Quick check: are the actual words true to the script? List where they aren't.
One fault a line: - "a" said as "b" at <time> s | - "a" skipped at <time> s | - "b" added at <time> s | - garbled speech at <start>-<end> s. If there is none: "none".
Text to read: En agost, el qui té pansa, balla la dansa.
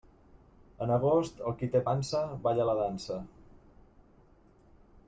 none